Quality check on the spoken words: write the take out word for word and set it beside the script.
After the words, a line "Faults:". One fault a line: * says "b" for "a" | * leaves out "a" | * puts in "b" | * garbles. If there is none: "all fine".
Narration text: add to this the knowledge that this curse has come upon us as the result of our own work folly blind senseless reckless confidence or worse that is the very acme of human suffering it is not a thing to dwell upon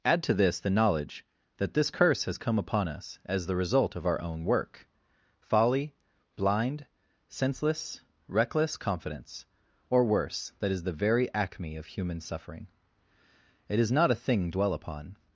add to this the knowledge that this curse has come upon us as the result of our own work folly blind senseless reckless confidence or worse that is the very acme of human suffering it is not a thing dwell upon
Faults:
* leaves out "to"